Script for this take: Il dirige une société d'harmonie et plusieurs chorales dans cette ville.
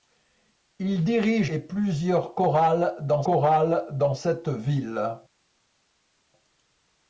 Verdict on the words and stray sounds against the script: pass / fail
fail